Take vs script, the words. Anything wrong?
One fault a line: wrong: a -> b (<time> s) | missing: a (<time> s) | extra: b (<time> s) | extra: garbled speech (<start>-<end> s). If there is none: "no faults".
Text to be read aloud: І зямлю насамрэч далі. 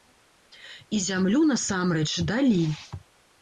no faults